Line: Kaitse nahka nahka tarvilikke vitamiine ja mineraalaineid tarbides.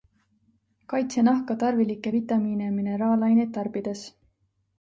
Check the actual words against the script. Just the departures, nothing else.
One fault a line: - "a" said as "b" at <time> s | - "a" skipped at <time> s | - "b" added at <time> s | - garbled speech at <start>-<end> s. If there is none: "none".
- "nahka" skipped at 1.6 s